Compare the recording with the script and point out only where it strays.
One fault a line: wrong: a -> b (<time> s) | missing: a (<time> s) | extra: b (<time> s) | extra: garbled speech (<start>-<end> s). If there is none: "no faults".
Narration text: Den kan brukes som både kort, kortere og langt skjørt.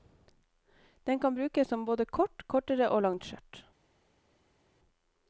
no faults